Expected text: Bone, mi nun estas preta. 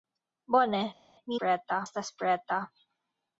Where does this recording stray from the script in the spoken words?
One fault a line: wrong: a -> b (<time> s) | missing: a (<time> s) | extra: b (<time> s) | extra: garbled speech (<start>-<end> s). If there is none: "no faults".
wrong: nun -> preta (1.4 s)